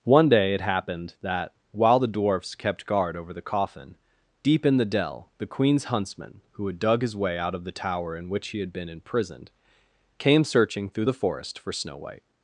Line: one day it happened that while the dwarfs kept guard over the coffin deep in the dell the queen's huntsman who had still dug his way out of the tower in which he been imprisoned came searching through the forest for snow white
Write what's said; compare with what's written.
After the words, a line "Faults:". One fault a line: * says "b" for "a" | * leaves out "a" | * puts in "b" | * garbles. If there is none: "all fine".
one day it happened that while the dwarfs kept guard over the coffin deep in the dell the queen's huntsman who had dug his way out of the tower in which he had been imprisoned came searching through the forest for snow white
Faults:
* leaves out "still"
* puts in "had"